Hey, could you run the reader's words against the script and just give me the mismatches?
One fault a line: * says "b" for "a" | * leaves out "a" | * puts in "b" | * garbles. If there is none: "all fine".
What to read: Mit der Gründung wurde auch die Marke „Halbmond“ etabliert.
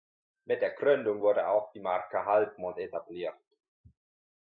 all fine